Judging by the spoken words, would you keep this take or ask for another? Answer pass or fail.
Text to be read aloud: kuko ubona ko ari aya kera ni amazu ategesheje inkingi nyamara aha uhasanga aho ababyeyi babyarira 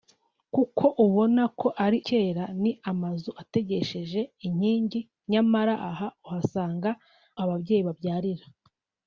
fail